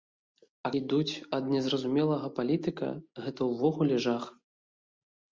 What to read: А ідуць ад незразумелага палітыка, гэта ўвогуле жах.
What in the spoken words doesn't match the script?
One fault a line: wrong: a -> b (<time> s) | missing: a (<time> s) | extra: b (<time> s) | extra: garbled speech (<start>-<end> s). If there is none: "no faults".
no faults